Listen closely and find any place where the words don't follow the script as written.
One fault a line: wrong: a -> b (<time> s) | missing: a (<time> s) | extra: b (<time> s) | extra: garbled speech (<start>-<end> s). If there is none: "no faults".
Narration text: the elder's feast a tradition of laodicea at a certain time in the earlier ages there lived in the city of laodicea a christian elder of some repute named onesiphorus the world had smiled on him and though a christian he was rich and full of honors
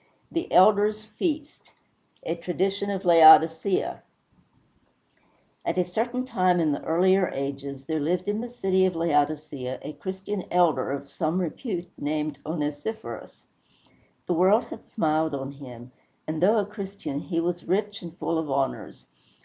no faults